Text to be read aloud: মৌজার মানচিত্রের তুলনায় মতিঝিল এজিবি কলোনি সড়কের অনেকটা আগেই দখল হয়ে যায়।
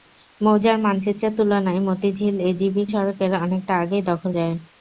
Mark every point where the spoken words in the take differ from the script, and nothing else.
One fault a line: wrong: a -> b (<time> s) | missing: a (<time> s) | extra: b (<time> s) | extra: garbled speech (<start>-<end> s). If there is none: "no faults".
missing: কলোনি (2.8 s)
missing: হয়ে (4.3 s)